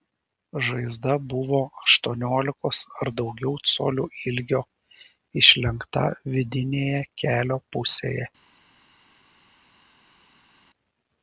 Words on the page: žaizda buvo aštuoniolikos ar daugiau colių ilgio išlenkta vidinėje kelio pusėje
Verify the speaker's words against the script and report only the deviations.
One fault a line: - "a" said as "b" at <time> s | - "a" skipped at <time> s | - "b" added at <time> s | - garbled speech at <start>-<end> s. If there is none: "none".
none